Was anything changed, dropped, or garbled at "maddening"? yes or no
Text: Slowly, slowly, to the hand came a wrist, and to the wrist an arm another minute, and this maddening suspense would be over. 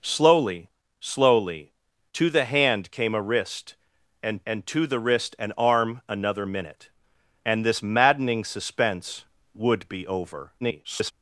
no